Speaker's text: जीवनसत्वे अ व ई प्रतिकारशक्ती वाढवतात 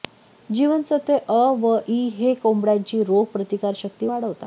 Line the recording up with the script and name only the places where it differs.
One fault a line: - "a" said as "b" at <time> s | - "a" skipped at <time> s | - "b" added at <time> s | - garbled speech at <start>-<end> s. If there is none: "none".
- "हे कोंबड्यांची रोग" added at 2.1 s